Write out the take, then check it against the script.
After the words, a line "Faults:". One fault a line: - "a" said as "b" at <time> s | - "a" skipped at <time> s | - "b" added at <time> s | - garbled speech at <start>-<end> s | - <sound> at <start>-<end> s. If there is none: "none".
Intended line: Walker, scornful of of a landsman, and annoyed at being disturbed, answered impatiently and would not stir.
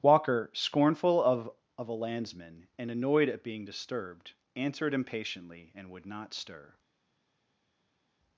Walker, scornful of of a landsman, and annoyed at being disturbed, answered impatiently and would not stir.
Faults:
none